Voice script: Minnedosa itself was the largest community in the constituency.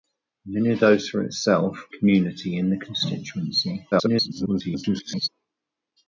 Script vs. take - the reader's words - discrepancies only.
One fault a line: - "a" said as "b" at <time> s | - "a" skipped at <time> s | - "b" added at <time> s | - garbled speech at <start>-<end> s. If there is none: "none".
- "was the largest" skipped at 1.9 s
- garbled speech at 3.9-5.3 s